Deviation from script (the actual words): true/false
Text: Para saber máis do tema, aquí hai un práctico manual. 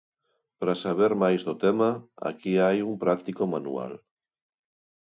false